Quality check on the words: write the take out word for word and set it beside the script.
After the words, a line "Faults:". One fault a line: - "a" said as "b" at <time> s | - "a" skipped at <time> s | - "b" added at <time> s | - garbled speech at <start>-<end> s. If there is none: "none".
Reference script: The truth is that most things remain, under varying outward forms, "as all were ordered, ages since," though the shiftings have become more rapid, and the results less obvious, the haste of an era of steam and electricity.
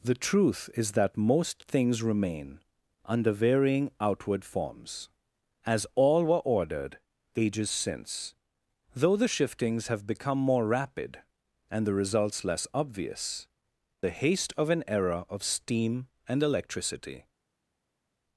The truth is that most things remain, under varying outward forms, "as all were ordered, ages since," though the shiftings have become more rapid, and the results less obvious, the haste of an era of steam and electricity.
Faults:
none